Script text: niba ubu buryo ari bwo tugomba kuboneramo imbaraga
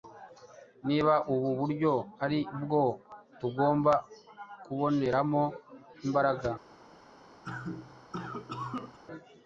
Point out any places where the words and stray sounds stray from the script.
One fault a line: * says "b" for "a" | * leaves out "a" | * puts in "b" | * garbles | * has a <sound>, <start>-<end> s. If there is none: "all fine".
* has a cough, 7.4-9.0 s